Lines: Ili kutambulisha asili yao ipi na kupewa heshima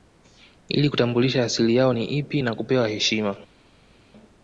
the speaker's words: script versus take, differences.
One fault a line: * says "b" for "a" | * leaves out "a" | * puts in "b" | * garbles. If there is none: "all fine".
* puts in "ni"